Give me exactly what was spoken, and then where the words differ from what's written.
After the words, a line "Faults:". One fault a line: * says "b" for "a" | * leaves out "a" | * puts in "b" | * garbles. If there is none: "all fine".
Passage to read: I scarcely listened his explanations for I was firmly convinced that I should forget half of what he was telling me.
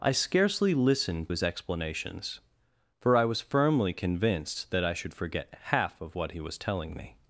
I scarcely listened his explanations for I was firmly convinced that I should forget half of what he was telling me.
Faults:
all fine